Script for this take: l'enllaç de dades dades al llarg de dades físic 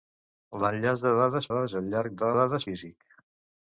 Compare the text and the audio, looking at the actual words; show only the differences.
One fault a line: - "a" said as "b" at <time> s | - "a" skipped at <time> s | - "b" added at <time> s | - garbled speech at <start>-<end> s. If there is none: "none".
none